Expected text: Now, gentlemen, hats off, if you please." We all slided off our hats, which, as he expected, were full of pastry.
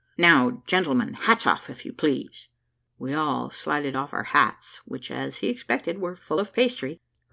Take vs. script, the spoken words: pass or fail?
pass